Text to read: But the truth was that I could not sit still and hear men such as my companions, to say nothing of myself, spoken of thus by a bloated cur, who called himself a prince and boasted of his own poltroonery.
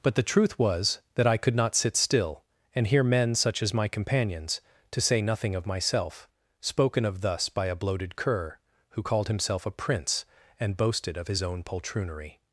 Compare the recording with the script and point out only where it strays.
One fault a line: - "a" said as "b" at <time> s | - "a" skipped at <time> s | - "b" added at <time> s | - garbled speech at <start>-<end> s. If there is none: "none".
none